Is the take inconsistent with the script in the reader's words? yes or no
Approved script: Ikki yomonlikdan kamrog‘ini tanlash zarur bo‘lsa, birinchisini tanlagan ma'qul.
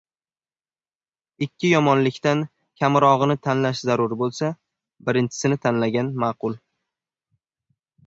no